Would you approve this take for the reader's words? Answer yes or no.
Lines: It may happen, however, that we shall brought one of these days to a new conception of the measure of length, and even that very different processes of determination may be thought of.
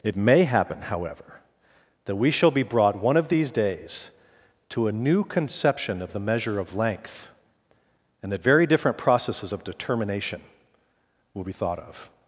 no